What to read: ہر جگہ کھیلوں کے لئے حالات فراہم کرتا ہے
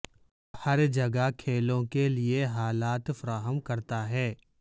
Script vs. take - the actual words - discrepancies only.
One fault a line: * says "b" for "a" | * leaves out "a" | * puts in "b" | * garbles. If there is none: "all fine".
all fine